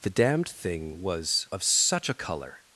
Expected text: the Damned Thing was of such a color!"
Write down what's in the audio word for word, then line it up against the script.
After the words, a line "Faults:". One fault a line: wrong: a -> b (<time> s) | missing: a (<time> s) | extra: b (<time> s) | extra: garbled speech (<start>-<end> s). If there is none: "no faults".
the Damned Thing was of such a color!"
Faults:
no faults